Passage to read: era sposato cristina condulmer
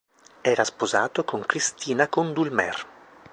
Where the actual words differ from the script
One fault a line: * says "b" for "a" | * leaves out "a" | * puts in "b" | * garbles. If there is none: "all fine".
* puts in "con"